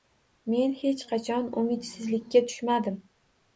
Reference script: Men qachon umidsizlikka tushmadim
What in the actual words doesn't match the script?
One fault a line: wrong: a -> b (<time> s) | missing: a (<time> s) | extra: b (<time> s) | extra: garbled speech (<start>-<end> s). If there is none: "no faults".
extra: hech (0.8 s)